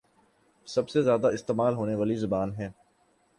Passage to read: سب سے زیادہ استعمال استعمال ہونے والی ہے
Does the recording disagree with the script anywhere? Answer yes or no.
yes